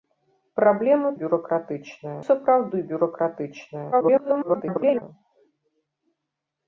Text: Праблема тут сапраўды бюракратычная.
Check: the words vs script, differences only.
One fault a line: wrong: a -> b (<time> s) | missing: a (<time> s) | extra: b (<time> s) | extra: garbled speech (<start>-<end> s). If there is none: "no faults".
wrong: тут -> бюракратычная (1.2 s)
extra: garbled speech (3.9-5.0 s)